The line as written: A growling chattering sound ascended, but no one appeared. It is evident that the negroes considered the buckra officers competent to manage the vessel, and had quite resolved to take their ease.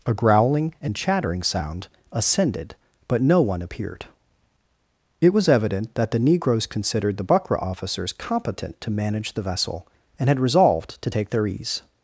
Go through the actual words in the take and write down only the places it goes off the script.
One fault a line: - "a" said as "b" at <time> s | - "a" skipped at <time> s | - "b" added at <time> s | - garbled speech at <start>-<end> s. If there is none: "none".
- "and" added at 0.8 s
- "is" said as "was" at 5.3 s
- "quite" skipped at 10.4 s